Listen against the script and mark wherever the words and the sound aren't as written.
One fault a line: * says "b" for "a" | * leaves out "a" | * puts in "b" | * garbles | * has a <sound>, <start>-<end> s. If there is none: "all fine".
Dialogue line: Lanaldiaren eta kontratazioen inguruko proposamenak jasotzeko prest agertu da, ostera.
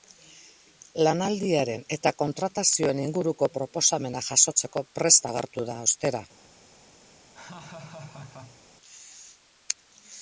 * has a laugh, 7.3-8.6 s